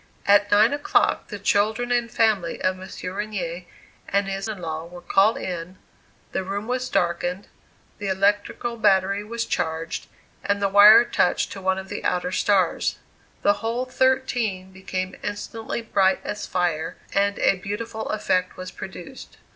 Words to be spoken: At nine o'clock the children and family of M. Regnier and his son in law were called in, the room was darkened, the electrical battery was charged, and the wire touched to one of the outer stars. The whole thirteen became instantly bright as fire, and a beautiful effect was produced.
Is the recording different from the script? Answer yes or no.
yes